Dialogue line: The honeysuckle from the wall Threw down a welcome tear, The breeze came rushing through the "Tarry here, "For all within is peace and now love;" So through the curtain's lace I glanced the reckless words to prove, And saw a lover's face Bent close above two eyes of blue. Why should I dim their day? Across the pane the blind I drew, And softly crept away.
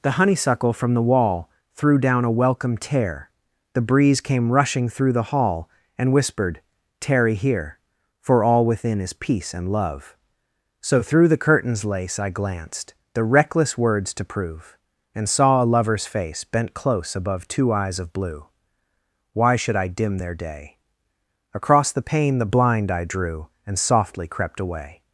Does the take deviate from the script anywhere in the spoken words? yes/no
yes